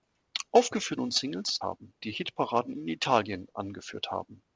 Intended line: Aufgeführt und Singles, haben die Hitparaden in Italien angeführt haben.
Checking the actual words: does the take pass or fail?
pass